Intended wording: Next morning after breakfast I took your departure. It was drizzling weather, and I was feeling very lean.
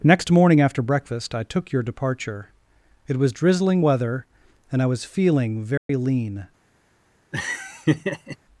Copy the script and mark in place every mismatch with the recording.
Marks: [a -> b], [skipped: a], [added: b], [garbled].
Next morning after breakfast I took your departure. It was drizzling weather, and I was feeling very lean.